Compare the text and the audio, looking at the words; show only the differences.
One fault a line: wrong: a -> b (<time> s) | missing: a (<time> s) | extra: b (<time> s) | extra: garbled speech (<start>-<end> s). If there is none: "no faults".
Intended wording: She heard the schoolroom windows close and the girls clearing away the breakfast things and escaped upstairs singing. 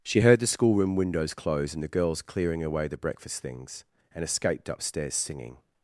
no faults